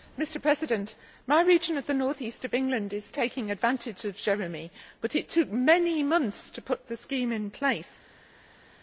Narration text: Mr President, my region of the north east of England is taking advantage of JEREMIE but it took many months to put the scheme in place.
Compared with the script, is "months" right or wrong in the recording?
right